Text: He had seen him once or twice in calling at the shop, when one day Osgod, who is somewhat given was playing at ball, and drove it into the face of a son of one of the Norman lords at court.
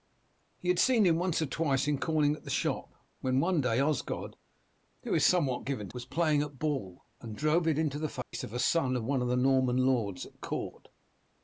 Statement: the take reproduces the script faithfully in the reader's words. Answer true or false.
true